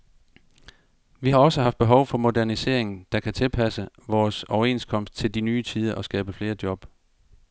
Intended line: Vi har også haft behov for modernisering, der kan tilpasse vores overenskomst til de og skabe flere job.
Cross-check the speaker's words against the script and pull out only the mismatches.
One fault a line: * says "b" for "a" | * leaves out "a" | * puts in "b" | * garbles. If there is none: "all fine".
* puts in "nye tider"